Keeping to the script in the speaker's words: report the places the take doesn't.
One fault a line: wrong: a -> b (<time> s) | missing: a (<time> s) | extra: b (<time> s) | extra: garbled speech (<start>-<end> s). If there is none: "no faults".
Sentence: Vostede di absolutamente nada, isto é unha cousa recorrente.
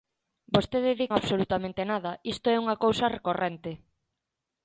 no faults